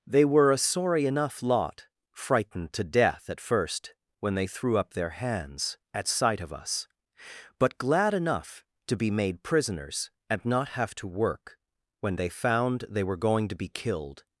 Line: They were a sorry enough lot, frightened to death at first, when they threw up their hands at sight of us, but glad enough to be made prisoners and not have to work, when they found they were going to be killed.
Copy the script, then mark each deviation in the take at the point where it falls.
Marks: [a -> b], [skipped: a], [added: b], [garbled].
They were a sorry enough lot, frightened to death at first, when they threw up their hands at sight of us, but glad enough to be made prisoners and not have to work, when they found they were going to be killed.